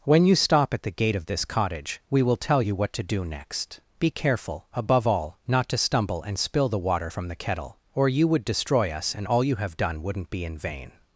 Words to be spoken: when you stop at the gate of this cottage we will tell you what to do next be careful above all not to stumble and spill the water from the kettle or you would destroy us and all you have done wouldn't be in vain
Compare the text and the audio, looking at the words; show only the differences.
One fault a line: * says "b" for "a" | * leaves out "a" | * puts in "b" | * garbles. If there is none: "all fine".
all fine